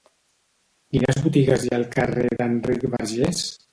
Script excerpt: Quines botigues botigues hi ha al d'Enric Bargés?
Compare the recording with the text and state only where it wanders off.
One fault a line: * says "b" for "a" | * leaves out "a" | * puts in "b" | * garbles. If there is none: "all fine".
* leaves out "botigues"
* puts in "carrer"